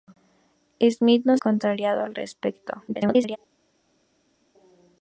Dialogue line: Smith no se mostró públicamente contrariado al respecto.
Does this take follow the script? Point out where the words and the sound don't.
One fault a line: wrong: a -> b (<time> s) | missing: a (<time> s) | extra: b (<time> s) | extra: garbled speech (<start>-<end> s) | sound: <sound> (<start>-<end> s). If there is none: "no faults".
missing: se mostró públicamente (1.4 s)
extra: garbled speech (2.9-3.4 s)